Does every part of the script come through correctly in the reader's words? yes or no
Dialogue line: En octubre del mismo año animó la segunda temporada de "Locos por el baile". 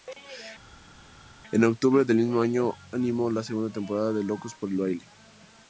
yes